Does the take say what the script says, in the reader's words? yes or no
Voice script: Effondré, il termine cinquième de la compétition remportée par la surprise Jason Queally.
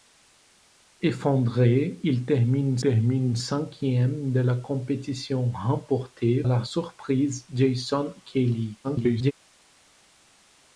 no